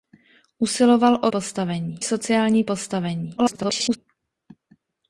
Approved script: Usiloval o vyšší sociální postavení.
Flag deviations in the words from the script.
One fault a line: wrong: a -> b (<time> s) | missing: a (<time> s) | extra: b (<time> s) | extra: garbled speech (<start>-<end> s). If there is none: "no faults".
wrong: vyšší -> postavení (1.3 s)
extra: garbled speech (3.4-4.0 s)